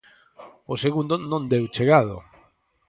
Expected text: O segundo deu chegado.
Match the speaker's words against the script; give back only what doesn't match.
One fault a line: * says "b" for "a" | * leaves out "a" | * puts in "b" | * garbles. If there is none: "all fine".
* puts in "non"